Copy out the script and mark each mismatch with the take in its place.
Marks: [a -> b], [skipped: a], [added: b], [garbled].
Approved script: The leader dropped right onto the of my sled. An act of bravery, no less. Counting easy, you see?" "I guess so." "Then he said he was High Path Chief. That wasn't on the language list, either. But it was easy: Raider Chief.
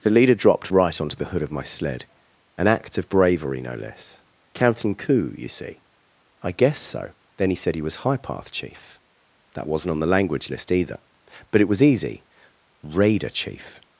The leader dropped right onto the [added: hood] of my sled. An act of bravery, no less. Counting [easy, -> coup] you see?" "I guess so." "Then he said he was High Path Chief. That wasn't on the language list, either. But it was easy: Raider Chief.